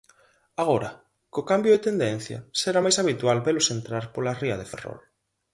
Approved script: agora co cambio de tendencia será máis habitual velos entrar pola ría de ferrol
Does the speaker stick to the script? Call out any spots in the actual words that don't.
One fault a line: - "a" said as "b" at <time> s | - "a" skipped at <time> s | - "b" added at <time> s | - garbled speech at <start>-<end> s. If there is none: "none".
none